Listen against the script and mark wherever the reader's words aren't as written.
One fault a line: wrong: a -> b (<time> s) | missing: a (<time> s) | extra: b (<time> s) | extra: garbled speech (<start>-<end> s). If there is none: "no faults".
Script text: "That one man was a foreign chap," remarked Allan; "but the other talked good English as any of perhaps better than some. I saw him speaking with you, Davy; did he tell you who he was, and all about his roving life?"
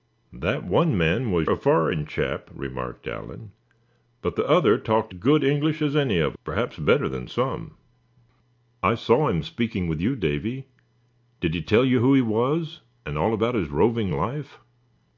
no faults